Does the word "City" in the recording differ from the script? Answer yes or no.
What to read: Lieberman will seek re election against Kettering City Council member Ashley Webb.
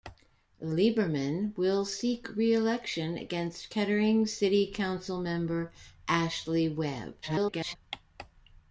no